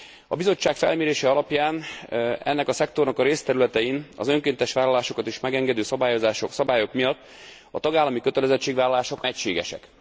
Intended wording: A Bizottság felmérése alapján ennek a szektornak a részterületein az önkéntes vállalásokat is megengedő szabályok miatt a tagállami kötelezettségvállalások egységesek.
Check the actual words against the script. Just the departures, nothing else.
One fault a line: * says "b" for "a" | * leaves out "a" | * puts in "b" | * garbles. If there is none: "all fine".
all fine